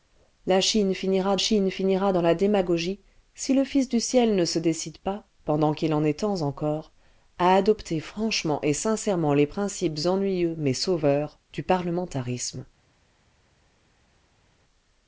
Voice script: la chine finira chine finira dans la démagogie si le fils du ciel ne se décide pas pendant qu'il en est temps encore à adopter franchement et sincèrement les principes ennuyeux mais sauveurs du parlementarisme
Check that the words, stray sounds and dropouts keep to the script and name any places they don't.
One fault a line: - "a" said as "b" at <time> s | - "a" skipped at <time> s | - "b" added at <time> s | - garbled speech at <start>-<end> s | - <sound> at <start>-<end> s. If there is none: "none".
none